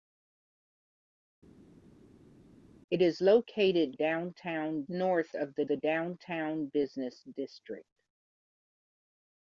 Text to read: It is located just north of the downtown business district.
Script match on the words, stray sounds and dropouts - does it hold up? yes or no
no